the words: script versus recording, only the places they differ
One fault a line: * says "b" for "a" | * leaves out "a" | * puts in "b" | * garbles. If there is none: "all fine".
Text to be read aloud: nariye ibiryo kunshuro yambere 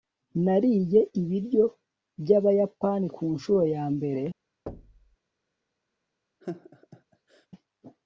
* puts in "byabayapani"